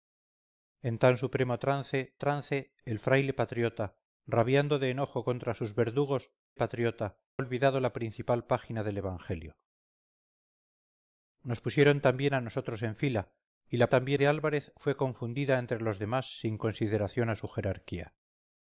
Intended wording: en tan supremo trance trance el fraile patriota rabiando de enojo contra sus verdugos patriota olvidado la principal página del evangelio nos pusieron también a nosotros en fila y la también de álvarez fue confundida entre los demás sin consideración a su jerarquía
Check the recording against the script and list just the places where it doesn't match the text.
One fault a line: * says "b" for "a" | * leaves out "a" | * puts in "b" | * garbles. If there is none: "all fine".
all fine